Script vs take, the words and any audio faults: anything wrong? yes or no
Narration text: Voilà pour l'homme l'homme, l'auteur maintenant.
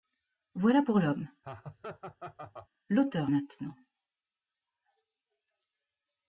yes